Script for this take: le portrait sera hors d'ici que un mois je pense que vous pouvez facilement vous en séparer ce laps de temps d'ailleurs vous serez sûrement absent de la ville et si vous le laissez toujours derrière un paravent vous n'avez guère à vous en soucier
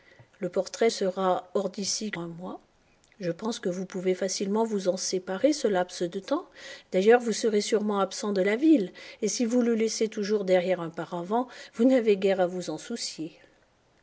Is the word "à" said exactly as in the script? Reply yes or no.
yes